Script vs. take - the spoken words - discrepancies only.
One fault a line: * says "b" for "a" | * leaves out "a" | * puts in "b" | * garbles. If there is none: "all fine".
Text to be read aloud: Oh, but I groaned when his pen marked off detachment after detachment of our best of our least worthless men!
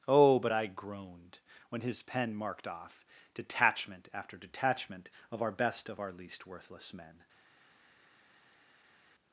all fine